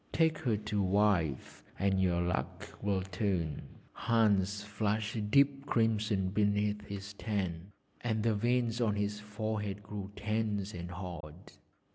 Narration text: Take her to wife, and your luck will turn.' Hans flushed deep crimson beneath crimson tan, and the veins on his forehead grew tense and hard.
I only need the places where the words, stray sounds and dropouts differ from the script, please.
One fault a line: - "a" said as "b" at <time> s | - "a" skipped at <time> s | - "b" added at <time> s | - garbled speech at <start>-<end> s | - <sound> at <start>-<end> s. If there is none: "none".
- "crimson" said as "his" at 6.9 s
- dropout at 11.2-11.2 s